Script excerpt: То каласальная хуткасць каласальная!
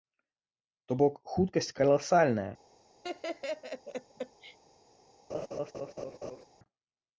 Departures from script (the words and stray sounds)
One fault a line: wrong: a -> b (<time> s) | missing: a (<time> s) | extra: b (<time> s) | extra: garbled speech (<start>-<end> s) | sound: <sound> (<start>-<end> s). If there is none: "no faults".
wrong: каласальная -> бок (1.0 s)
sound: laugh (3.0-4.6 s)
sound: laugh (5.3-6.5 s)